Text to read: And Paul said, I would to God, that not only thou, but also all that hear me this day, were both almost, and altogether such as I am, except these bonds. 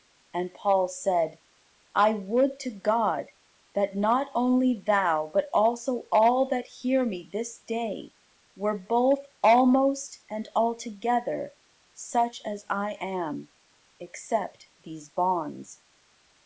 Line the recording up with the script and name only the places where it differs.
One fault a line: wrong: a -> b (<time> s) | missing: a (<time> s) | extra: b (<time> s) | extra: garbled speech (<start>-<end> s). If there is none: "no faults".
no faults